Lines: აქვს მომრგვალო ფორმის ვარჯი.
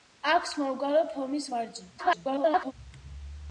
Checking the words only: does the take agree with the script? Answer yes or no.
no